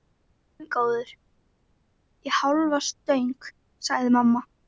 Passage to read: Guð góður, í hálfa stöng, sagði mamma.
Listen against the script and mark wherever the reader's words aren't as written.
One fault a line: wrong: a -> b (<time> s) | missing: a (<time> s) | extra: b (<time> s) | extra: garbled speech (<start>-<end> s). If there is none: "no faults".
no faults